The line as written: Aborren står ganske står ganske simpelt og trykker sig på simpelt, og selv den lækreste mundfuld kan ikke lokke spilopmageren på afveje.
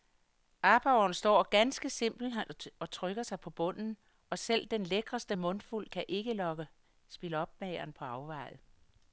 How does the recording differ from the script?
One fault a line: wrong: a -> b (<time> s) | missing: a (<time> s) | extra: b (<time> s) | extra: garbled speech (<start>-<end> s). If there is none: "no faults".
missing: står ganske (1.9 s)
wrong: simpelt -> bunden (3.5 s)